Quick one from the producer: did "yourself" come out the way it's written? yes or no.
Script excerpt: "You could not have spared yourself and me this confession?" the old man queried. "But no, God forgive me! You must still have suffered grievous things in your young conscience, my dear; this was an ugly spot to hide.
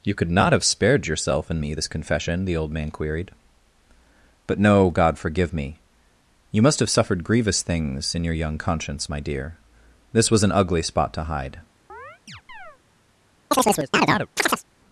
yes